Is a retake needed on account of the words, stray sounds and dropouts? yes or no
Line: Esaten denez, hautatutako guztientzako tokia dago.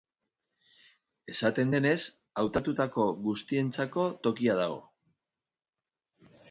no